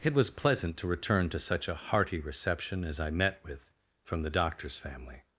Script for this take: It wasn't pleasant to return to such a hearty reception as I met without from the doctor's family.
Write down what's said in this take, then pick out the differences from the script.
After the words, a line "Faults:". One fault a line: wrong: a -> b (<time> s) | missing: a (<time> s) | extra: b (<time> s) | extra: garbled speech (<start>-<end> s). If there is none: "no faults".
It was pleasant to return to such a hearty reception as I met with from the doctor's family.
Faults:
wrong: wasn't -> was (0.1 s)
wrong: without -> with (3.4 s)